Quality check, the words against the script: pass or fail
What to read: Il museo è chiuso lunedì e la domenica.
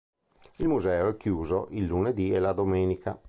fail